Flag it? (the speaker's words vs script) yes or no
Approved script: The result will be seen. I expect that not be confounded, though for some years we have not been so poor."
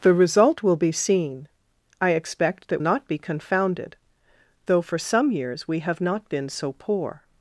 no